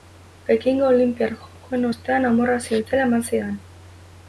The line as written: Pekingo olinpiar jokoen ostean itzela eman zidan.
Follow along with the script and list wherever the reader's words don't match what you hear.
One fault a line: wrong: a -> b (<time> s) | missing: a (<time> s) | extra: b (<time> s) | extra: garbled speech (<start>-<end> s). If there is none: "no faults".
extra: amorrazio (2.3 s)